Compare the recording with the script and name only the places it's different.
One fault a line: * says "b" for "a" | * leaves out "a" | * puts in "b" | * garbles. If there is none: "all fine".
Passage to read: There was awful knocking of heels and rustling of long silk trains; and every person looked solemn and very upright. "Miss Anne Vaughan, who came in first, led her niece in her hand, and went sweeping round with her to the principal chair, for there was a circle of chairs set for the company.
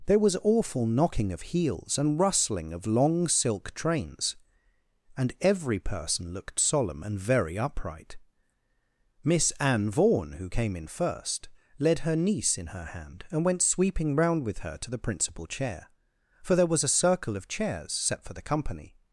all fine